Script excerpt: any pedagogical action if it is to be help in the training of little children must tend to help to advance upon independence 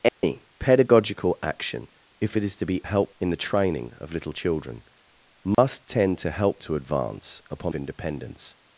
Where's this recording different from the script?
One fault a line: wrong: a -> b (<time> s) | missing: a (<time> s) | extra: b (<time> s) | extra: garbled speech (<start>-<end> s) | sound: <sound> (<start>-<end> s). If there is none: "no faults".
sound: dropout (0.1-0.2 s)
sound: dropout (5.5-5.6 s)